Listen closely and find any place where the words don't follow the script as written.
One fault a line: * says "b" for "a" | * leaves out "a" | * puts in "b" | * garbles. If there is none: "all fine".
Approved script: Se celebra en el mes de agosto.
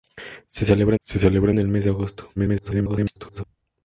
* puts in "se celebra"
* garbles